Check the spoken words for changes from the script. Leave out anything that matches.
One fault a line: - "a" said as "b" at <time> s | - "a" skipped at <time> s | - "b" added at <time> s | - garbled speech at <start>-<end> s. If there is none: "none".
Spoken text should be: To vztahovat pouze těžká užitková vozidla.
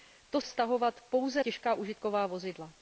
none